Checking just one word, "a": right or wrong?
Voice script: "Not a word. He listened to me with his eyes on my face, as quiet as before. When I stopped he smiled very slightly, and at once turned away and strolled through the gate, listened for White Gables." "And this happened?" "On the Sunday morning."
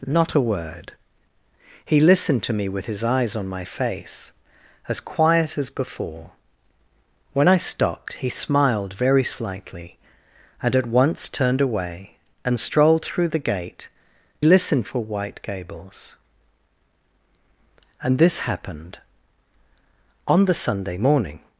right